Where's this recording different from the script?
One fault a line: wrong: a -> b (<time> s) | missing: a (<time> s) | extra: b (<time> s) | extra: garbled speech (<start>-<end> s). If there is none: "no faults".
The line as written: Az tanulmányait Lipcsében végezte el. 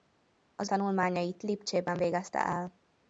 no faults